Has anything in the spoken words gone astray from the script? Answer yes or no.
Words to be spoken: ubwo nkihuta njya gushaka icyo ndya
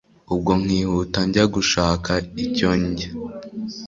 no